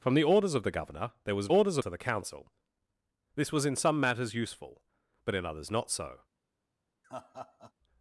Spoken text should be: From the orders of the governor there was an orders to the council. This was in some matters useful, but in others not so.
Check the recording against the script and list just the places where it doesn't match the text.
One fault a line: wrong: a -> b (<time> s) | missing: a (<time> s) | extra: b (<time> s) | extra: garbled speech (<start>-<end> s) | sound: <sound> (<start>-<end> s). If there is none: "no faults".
sound: laugh (7.0-7.7 s)